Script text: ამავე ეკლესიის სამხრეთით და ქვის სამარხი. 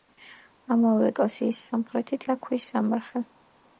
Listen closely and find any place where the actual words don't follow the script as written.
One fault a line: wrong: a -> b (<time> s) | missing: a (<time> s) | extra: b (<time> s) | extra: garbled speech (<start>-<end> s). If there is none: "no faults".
no faults